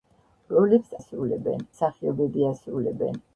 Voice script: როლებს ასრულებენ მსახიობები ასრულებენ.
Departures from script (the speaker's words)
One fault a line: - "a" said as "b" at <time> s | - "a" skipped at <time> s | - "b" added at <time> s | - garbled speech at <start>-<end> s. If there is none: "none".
none